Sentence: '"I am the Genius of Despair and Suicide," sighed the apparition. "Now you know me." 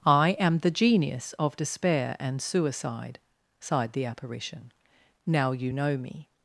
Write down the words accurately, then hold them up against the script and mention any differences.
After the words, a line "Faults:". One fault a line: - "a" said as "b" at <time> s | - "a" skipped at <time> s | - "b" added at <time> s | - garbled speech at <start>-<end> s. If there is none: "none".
'"I am the Genius of Despair and Suicide," sighed the apparition. "Now you know me."
Faults:
none